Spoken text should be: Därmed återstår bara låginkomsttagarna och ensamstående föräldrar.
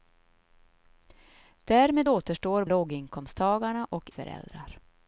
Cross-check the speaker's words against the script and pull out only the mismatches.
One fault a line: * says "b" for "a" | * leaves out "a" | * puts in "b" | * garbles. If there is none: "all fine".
* leaves out "bara"
* leaves out "ensamstående"